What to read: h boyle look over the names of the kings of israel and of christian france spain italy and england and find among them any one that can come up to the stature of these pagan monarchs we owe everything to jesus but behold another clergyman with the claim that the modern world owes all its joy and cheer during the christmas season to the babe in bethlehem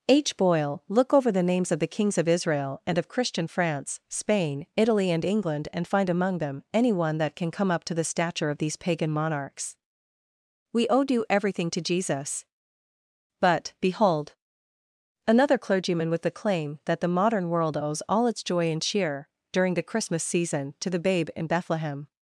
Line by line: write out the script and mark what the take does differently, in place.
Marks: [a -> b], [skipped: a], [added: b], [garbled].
h boyle look over the names of the kings of israel and of christian france spain italy and england and find among them any one that can come up to the stature of these pagan monarchs we owe [added: due] everything to jesus but behold another clergyman with the claim that the modern world owes all its joy and cheer during the christmas season to the babe in bethlehem